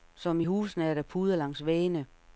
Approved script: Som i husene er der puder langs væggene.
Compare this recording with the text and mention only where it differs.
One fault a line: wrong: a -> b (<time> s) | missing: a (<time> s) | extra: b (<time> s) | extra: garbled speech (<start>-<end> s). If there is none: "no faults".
no faults